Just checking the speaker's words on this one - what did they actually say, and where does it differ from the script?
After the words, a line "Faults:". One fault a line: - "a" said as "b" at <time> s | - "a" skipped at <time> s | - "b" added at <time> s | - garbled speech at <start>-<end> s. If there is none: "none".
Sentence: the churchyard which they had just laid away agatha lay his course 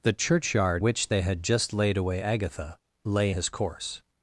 the churchyard which they had just laid away agatha lay his course
Faults:
none